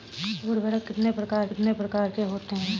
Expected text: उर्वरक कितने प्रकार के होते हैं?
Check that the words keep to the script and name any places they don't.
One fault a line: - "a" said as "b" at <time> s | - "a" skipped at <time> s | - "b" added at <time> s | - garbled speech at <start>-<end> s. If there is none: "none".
- "कितने प्रकार" added at 1.5 s